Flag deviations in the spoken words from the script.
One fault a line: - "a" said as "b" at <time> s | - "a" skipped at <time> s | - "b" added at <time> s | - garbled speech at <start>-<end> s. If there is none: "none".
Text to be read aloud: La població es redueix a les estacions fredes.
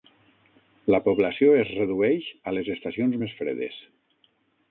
- "més" added at 3.2 s